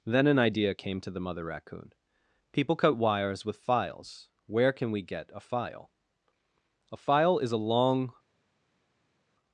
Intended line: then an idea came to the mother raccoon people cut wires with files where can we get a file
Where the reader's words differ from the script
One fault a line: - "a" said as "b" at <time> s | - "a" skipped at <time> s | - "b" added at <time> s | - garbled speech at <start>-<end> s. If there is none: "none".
- "a file is a long" added at 6.9 s